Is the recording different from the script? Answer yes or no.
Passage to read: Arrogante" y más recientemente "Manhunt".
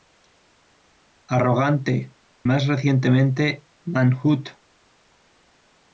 yes